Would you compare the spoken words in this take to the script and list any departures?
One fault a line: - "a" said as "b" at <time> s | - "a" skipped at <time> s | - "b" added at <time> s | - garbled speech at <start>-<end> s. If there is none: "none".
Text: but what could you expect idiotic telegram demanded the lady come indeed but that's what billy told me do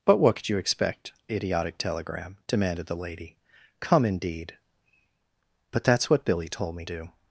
none